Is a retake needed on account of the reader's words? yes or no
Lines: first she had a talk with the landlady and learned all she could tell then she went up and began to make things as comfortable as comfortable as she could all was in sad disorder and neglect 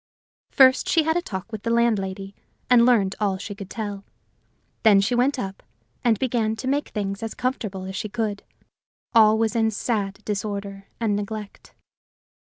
yes